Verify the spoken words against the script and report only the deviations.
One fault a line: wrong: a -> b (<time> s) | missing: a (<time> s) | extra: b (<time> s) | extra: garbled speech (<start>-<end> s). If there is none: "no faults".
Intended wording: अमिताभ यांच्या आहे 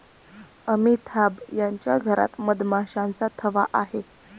extra: घरात मधमाशांचा थवा (2.0 s)